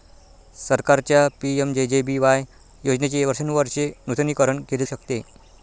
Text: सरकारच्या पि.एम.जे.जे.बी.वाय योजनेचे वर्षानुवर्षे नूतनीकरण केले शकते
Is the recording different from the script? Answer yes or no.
no